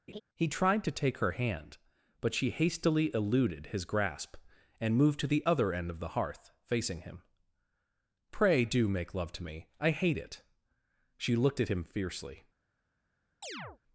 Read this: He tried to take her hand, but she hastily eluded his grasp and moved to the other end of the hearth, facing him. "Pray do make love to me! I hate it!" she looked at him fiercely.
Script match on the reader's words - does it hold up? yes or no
yes